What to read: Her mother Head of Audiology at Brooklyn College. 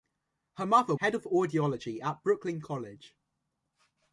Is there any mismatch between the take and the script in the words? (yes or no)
no